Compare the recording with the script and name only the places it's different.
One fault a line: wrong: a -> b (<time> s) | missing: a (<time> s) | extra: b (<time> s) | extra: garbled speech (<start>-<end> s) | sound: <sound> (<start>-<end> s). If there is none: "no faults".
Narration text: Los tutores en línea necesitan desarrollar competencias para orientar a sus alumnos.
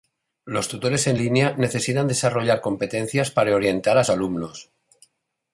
missing: sus (4.0 s)